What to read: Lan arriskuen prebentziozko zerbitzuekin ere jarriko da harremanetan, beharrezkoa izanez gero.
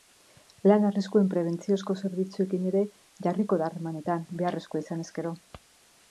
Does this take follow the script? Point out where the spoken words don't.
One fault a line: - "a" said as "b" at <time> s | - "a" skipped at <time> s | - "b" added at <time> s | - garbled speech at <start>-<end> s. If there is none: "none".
none